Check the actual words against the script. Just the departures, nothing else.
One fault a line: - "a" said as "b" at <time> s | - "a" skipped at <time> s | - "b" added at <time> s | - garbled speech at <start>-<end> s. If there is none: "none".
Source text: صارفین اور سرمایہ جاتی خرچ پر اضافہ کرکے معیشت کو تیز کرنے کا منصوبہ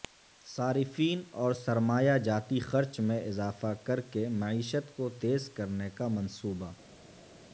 - "پر" said as "میں" at 3.0 s